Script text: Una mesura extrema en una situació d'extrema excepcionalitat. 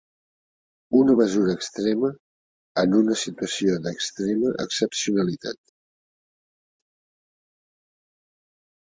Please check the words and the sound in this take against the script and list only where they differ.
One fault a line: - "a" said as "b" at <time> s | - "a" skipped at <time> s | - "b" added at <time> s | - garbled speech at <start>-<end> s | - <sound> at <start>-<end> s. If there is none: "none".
none